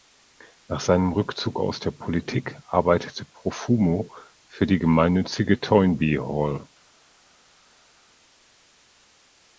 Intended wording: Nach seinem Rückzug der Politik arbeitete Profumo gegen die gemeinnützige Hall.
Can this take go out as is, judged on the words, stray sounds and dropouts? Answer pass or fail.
fail